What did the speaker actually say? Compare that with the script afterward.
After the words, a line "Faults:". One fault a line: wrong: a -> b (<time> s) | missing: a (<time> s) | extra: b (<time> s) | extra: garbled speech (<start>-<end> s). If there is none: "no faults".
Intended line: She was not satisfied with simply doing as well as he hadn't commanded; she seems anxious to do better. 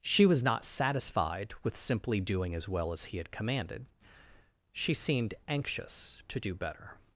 She was not satisfied with simply doing as well as he had commanded; she seemed anxious to do better.
Faults:
wrong: hadn't -> had (3.2 s)
wrong: seems -> seemed (4.9 s)